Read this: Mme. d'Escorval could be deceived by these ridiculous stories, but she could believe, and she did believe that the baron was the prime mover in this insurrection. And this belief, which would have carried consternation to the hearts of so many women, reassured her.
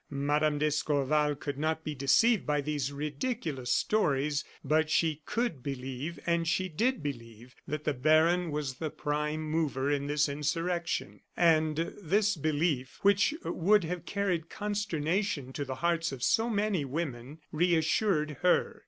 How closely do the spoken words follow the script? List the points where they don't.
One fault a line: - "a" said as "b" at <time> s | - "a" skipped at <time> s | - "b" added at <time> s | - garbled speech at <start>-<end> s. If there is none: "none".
- "not" added at 1.6 s